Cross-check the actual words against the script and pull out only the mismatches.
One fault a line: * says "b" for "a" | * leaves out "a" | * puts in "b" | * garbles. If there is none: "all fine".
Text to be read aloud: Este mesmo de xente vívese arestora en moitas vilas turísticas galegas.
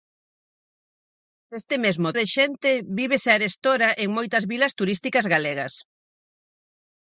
all fine